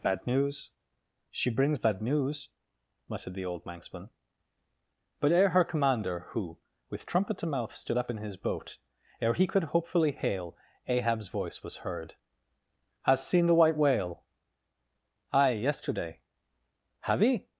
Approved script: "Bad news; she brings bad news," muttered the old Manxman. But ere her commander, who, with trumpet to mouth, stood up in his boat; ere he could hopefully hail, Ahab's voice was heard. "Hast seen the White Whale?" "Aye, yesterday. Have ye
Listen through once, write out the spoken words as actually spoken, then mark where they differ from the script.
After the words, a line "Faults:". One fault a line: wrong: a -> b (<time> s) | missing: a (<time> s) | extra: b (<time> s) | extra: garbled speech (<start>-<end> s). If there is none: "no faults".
"Bad news; she brings bad news," muttered the old Manxman. But ere her commander, who, with trumpet to mouth, stood up in his boat; ere he could hopefully hail, Ahab's voice was heard. "Hast seen the White Whale?" "Aye, yesterday. Have ye
Faults:
no faults